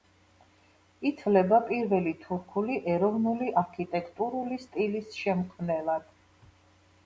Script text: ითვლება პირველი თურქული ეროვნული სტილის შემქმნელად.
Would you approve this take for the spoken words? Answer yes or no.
no